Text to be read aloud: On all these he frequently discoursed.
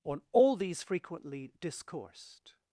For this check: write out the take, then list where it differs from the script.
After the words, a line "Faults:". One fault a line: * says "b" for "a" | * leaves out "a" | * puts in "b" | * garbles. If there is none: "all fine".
On all these frequently discoursed.
Faults:
* leaves out "he"